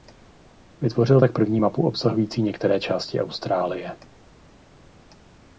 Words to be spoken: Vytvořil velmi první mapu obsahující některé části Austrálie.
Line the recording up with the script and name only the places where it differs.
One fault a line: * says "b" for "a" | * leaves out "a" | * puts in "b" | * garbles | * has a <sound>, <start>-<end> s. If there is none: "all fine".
* says "tak" for "velmi"